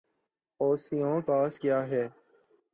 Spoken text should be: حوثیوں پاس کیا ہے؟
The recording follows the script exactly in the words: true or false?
true